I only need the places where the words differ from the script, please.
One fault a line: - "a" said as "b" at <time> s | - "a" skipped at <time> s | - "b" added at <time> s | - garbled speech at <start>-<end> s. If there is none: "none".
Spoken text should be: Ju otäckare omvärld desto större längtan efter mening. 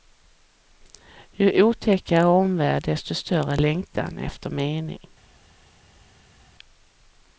none